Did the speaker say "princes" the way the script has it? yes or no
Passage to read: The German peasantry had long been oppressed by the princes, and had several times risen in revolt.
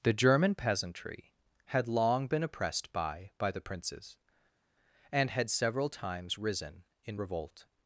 yes